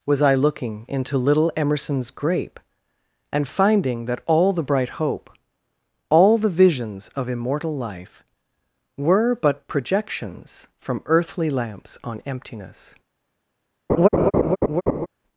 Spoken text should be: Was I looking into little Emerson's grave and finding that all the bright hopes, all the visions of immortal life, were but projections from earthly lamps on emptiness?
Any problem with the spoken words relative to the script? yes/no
yes